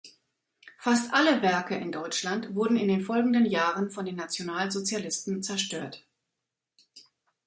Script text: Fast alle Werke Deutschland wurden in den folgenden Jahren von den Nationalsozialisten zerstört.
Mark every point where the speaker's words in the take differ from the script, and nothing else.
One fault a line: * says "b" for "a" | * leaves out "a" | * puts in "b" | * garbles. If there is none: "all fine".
* puts in "in"